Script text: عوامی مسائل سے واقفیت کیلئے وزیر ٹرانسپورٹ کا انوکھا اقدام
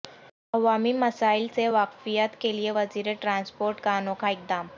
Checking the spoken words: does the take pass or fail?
pass